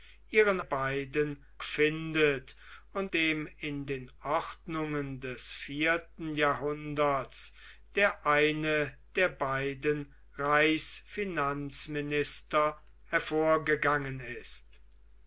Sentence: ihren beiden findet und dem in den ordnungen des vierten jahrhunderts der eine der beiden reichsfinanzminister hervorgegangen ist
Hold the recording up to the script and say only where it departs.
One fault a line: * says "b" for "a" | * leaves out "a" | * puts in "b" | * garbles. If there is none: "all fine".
all fine